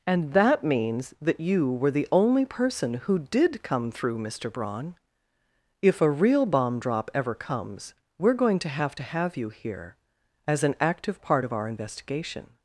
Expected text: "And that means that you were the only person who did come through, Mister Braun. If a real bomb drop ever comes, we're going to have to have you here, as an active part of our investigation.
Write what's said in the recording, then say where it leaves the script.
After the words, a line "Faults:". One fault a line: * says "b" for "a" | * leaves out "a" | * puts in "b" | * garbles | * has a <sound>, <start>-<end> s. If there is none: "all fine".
"And that means that you were the only person who did come through, Mister Braun. If a real bomb drop ever comes, we're going to have to have you here, as an active part of our investigation.
Faults:
all fine